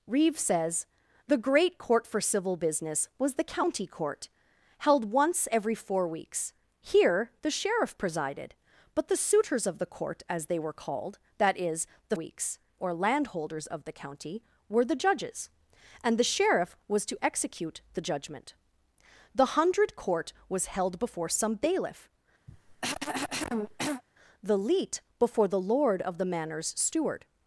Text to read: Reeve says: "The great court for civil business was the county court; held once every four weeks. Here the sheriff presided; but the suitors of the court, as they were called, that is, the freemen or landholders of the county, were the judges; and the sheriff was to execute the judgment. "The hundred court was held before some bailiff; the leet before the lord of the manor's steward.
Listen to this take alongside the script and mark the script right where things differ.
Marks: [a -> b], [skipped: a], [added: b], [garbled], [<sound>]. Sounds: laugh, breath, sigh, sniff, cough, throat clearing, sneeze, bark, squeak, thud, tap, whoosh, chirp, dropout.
Reeve says: "The great court for civil business was the county court; held once every four weeks. Here the sheriff presided; but the suitors of the court, as they were called, that is, the [freemen -> weeks] or landholders of the county, were the judges; and the sheriff was to execute the judgment. "The hundred court was held before some bailiff; [cough] the leet before the lord of the manor's steward.